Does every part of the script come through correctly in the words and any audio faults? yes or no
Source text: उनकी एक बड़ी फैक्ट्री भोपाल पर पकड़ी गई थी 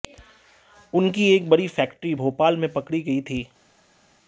no